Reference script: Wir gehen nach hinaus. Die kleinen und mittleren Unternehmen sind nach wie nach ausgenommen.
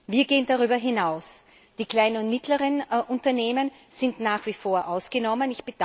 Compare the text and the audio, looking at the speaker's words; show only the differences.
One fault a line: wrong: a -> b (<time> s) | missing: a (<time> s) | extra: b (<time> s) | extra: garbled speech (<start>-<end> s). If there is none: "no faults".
wrong: nach -> darüber (0.5 s)
wrong: nach -> vor (4.5 s)